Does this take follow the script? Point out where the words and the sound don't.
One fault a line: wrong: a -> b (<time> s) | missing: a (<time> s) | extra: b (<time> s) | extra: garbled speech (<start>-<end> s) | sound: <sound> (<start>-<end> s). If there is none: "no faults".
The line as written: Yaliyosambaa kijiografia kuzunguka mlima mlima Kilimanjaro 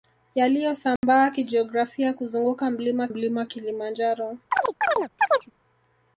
sound: dropout (1.0-1.0 s)
sound: chirp (4.5-5.5 s)